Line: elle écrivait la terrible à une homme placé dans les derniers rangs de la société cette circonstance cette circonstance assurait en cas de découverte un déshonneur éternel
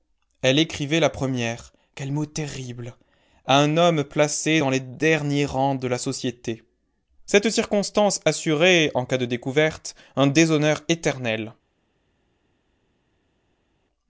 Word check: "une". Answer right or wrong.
wrong